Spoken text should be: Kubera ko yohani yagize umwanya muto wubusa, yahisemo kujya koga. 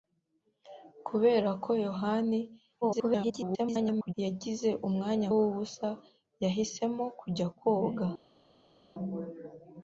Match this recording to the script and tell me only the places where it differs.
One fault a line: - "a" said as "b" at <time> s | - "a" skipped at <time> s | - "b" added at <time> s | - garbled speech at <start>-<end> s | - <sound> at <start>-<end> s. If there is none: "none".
- garbled speech at 2.8-4.1 s
- "muto" skipped at 5.3 s